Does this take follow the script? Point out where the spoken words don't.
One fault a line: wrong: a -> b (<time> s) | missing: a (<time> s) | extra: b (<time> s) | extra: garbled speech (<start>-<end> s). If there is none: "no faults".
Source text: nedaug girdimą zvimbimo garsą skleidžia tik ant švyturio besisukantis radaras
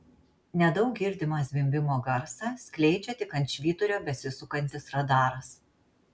no faults